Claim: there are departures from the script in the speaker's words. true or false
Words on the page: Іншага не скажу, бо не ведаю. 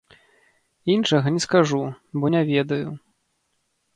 false